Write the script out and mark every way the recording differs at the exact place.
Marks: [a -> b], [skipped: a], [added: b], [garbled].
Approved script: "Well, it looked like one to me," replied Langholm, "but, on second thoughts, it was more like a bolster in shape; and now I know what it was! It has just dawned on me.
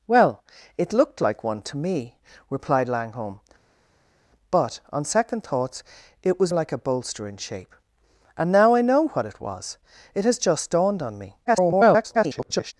"Well, it looked like one to me," replied Langholm, "but, on second thoughts, it was [skipped: more] like a bolster in shape; and now I know what it was! It has just dawned on me. [garbled]